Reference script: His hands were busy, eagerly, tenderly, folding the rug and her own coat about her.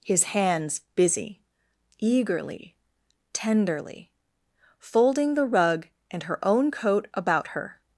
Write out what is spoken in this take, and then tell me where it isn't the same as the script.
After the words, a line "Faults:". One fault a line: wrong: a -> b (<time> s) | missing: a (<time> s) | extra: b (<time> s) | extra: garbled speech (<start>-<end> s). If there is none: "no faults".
His hands busy, eagerly, tenderly, folding the rug and her own coat about her.
Faults:
missing: were (0.8 s)